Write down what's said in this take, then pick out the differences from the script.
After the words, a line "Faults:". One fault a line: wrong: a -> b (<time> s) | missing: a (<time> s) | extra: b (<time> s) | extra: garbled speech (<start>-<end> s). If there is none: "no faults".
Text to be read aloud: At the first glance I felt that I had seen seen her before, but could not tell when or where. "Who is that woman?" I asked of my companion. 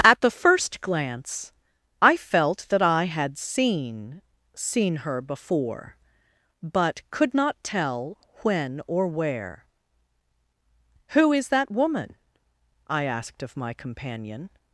At the first glance I felt that I had seen seen her before, but could not tell when or where. "Who is that woman?" I asked of my companion.
Faults:
no faults